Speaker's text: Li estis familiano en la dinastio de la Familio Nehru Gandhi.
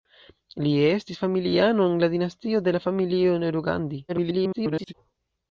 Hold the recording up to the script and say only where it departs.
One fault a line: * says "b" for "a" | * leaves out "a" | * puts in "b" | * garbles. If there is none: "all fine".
* garbles